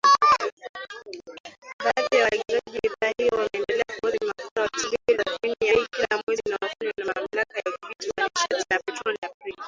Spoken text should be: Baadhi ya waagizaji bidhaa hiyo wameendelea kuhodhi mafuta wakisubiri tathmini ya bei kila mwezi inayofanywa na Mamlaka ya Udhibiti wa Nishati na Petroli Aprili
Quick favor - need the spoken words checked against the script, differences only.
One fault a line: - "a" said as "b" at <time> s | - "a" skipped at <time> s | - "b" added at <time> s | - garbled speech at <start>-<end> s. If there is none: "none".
none